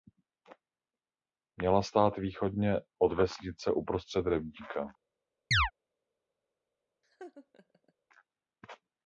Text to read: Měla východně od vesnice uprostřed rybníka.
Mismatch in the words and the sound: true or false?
true